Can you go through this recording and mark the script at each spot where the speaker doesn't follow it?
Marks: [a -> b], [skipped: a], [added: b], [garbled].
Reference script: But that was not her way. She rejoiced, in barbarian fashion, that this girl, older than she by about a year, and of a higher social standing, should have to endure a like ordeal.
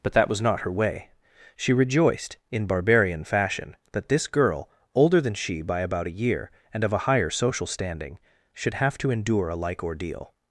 But that was not her way. She rejoiced, in barbarian fashion, that this girl, older than she by about a year, and of a higher social standing, should have to endure a like ordeal.